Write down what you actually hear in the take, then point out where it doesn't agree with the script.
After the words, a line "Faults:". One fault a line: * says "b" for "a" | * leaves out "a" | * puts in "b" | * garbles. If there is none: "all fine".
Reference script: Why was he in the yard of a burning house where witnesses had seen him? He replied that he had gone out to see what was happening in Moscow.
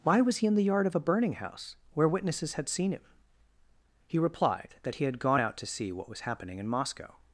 Why was he in the yard of a burning house where witnesses had seen him? He replied that he had gone out to see what was happening in Moscow.
Faults:
all fine